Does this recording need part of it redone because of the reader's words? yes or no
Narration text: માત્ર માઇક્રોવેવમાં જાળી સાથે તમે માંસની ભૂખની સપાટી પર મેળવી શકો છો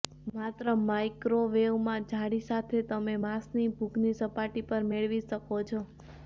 no